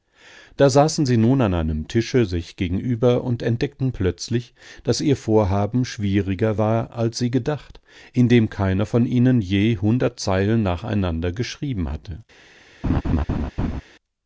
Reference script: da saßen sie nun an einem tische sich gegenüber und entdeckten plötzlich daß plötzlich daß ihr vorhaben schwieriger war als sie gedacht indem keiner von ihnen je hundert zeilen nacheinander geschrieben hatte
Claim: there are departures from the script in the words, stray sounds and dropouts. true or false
true